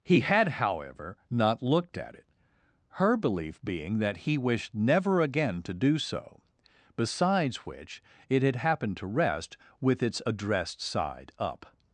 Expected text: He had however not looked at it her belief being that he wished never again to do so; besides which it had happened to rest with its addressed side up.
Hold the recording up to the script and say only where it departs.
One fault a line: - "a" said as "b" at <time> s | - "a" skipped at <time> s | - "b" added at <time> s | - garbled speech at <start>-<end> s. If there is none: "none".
none